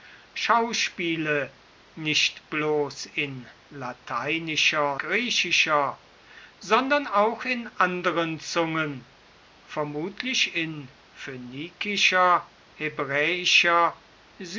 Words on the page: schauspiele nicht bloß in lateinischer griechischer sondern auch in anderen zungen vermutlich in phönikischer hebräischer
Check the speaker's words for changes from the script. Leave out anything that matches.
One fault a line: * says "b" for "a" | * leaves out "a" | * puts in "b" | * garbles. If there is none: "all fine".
all fine